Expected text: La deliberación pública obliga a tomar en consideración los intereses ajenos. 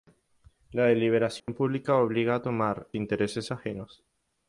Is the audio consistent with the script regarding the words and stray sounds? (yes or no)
no